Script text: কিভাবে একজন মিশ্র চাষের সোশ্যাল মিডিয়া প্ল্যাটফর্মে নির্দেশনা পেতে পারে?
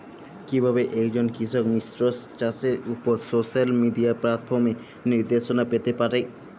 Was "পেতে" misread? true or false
false